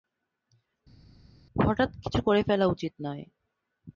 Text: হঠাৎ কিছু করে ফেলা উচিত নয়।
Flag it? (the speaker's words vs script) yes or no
no